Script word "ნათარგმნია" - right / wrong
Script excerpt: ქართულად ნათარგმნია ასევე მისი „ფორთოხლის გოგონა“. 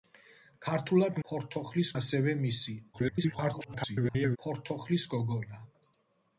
wrong